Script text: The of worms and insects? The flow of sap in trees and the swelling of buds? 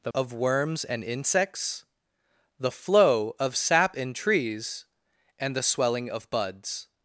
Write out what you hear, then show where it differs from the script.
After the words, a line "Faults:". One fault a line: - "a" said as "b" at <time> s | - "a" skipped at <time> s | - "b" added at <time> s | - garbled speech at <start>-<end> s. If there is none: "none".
The of worms and insects? The flow of sap in trees and the swelling of buds?
Faults:
none